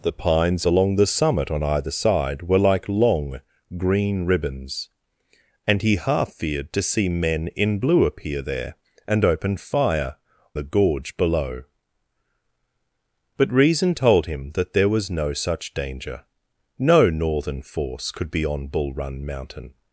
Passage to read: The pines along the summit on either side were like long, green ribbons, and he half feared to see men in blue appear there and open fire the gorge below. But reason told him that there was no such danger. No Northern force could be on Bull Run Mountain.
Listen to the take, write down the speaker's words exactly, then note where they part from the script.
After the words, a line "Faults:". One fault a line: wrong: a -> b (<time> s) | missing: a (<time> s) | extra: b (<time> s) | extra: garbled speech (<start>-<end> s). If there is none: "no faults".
The pines along the summit on either side were like long, green ribbons, and he half feared to see men in blue appear there and open fire the gorge below. But reason told him that there was no such danger. No Northern force could be on Bull Run Mountain.
Faults:
no faults